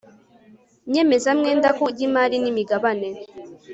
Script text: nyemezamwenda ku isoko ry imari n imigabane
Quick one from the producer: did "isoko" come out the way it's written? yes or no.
no